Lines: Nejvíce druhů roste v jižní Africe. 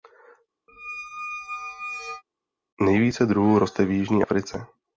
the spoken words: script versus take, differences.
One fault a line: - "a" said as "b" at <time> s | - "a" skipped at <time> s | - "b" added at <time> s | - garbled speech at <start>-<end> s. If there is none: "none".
none